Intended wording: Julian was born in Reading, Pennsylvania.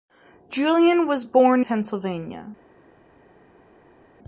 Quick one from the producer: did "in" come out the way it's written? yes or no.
no